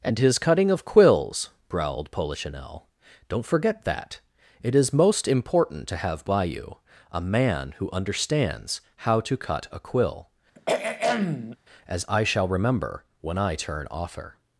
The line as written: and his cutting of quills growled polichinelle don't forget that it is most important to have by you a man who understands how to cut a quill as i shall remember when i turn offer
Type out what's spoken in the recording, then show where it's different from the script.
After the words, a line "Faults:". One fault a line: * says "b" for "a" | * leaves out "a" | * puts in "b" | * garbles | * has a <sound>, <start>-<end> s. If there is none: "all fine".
and his cutting of quills growled polichinelle don't forget that it is most important to have by you a man who understands how to cut a quill as i shall remember when i turn offer
Faults:
* has a throat clearing, 10.6-11.6 s